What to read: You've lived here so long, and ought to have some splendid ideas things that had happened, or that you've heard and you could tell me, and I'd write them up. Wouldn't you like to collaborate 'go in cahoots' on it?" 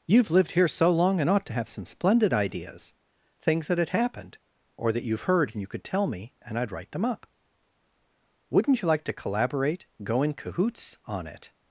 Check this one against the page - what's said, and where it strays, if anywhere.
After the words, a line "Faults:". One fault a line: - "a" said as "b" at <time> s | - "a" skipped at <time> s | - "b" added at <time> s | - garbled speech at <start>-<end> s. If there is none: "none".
You've lived here so long, and ought to have some splendid ideas things that had happened, or that you've heard and you could tell me, and I'd write them up. Wouldn't you like to collaborate 'go in cahoots' on it?"
Faults:
none